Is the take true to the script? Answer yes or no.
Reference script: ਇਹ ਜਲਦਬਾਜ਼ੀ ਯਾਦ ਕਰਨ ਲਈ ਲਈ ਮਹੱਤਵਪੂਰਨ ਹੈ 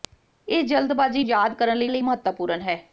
yes